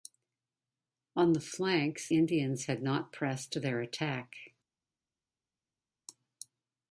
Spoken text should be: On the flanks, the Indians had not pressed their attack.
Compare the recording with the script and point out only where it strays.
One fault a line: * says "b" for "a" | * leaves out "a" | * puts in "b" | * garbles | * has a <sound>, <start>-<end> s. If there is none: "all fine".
* leaves out "the"